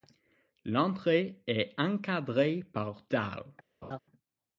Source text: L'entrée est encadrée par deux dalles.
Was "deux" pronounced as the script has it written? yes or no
no